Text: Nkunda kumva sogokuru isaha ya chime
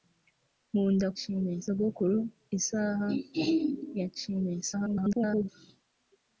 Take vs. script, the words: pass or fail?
fail